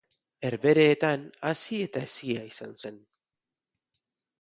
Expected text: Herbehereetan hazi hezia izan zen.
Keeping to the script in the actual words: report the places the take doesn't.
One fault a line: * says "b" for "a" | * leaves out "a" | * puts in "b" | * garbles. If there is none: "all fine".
* puts in "eta"